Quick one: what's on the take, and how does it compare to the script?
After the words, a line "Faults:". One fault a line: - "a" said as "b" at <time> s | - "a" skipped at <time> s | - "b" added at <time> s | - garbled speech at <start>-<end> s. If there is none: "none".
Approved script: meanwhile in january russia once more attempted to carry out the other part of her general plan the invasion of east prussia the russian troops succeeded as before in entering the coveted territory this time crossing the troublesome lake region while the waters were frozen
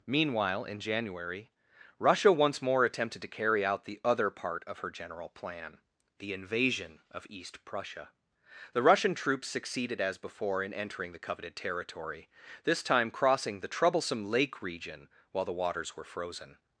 meanwhile in january russia once more attempted to carry out the other part of her general plan the invasion of east prussia the russian troops succeeded as before in entering the coveted territory this time crossing the troublesome lake region while the waters were frozen
Faults:
none